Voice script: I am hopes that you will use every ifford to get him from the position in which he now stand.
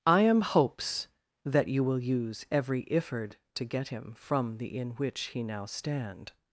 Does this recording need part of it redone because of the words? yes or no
yes